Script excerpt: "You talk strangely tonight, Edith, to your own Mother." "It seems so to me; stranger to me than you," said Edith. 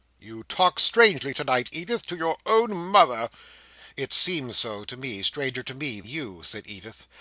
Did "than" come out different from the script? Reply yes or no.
yes